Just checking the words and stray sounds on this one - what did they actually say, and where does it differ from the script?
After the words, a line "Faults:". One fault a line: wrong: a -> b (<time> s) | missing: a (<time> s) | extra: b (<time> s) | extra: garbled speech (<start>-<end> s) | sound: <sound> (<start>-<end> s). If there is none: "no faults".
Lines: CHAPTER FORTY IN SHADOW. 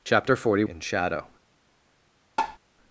CHAPTER FORTY IN SHADOW.
Faults:
sound: tap (2.4-2.6 s)